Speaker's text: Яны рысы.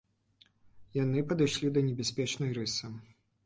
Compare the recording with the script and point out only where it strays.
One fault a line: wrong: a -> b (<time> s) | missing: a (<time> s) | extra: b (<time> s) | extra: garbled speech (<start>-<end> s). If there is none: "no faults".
extra: падышлі да небяспечнай (1.3 s)